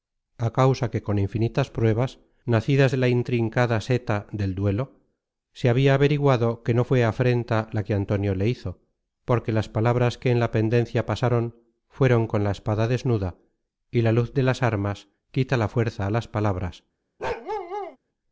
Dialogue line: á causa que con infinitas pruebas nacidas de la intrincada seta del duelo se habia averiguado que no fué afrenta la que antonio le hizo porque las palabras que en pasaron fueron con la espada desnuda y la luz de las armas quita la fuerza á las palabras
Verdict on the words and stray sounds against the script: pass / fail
fail